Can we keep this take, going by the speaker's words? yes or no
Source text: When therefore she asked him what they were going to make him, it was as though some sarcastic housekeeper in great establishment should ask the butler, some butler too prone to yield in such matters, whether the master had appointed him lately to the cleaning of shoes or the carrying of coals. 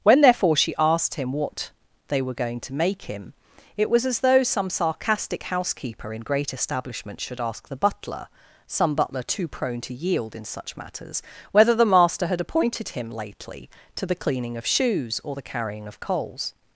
yes